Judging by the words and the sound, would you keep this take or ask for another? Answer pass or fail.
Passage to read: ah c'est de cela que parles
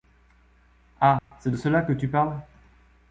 fail